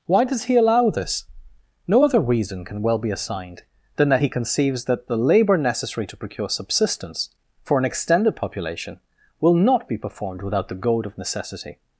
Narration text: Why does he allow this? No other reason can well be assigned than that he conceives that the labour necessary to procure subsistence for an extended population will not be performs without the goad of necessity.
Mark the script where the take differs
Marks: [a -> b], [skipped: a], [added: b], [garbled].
Why does he allow this? No other reason can well be assigned than that he conceives that the labour necessary to procure subsistence for an extended population will not be [performs -> performed] without the goad of necessity.